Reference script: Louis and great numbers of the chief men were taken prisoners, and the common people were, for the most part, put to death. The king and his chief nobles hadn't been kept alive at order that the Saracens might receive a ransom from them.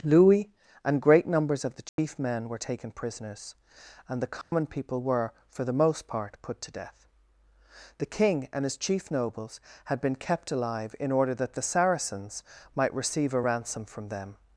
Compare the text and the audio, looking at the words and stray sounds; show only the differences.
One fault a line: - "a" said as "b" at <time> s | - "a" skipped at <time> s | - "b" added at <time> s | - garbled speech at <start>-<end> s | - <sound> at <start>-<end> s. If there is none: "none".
- dropout at 1.9-2.0 s
- dropout at 4.4-4.5 s
- "hadn't" said as "had" at 9.8 s
- "at" said as "in" at 11.0 s